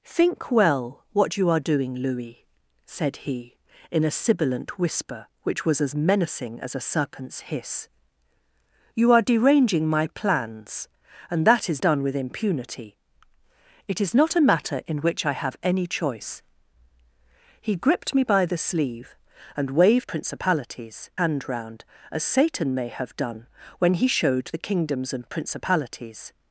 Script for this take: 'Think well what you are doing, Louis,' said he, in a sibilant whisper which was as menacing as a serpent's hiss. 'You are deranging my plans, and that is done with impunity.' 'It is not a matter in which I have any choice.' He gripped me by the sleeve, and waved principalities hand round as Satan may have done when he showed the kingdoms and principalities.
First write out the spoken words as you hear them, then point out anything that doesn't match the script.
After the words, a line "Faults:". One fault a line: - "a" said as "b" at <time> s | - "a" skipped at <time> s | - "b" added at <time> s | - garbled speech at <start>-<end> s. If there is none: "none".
'Think well what you are doing, Louis,' said he, in a sibilant whisper which was as menacing as a serpent's hiss. 'You are deranging my plans, and that is done with impunity.' 'It is not a matter in which I have any choice.' He gripped me by the sleeve, and waved principalities hand round as Satan may have done when he showed the kingdoms and principalities.
Faults:
none